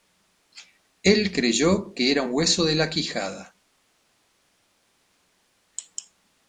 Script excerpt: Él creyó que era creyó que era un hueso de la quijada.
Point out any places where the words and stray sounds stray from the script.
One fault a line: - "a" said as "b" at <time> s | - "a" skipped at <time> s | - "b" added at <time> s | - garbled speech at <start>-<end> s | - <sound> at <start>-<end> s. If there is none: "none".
- "creyó que era" skipped at 2.2 s